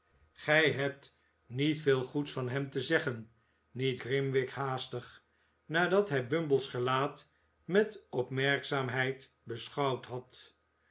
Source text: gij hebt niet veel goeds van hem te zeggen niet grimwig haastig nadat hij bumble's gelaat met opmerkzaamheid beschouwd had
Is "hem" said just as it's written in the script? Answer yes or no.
yes